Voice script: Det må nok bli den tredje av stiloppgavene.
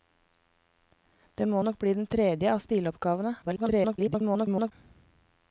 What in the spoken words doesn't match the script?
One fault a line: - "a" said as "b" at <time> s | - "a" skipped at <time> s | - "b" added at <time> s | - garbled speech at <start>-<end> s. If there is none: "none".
- garbled speech at 3.4-4.7 s